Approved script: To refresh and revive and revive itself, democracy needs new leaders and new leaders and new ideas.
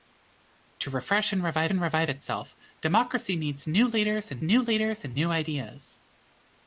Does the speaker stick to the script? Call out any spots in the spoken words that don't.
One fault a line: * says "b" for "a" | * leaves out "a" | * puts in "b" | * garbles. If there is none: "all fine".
all fine